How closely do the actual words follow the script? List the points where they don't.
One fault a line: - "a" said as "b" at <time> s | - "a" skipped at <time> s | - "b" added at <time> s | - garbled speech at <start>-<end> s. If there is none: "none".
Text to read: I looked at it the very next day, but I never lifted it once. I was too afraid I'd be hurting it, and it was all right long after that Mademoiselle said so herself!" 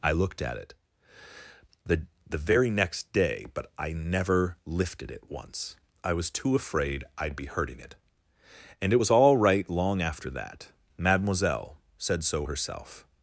- "the" added at 2.3 s